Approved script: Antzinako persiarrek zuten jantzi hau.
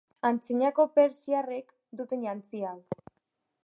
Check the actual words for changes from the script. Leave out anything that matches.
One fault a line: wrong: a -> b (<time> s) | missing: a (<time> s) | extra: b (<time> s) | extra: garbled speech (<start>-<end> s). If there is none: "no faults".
no faults